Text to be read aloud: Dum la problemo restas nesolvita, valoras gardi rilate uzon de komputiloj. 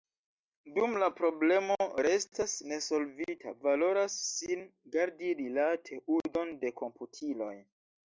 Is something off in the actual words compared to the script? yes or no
yes